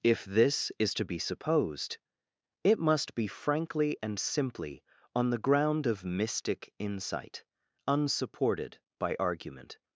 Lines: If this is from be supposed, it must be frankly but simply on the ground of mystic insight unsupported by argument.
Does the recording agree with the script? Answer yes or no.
no